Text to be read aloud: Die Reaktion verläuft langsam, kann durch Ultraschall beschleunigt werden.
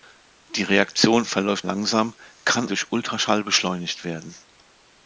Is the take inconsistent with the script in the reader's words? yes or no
no